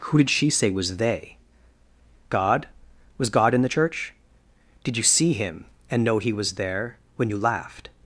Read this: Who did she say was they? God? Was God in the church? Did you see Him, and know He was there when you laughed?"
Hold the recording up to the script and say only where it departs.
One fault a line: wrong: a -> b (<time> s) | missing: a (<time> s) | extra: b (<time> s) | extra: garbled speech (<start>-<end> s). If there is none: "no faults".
no faults